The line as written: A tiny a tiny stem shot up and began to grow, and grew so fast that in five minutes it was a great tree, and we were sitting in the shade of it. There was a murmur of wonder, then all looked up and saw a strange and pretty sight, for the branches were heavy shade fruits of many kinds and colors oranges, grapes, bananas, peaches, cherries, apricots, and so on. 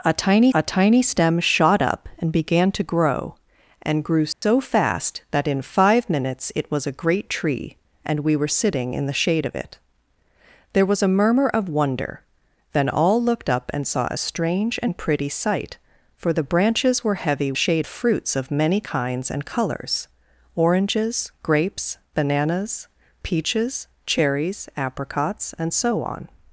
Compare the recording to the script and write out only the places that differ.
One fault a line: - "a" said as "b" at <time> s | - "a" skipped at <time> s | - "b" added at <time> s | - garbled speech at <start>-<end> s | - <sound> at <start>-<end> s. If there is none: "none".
- dropout at 4.3-4.4 s